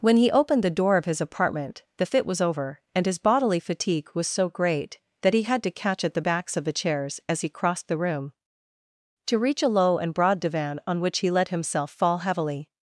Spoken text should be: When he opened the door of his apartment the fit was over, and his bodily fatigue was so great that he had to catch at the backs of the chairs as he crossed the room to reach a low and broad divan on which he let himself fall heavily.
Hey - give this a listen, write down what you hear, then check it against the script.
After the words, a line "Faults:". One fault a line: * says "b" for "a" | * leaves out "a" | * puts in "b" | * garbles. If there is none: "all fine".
When he opened the door of his apartment the fit was over, and his bodily fatigue was so great that he had to catch at the backs of the chairs as he crossed the room to reach a low and broad divan on which he let himself fall heavily.
Faults:
all fine